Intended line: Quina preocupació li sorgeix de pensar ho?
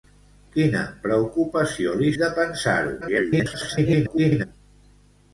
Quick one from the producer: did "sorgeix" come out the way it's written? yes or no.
no